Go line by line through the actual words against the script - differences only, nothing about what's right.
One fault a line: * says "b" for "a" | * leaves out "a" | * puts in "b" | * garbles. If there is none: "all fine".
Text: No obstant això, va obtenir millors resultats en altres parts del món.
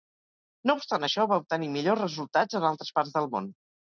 all fine